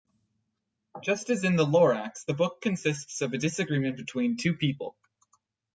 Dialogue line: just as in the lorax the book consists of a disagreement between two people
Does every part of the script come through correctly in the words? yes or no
yes